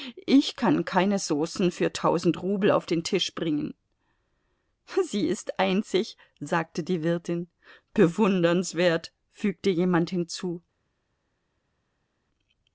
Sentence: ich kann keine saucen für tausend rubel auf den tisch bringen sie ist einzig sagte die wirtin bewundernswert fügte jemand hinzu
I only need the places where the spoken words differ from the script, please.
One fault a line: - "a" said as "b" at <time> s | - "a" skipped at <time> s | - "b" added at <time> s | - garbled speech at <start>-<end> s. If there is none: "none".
none